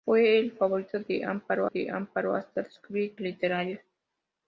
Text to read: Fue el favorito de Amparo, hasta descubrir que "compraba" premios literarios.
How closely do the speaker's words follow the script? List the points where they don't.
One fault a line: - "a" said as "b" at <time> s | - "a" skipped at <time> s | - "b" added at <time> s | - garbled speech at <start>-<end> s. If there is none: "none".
- "de Amparo" added at 1.6 s
- "que compraba premios" skipped at 3.2 s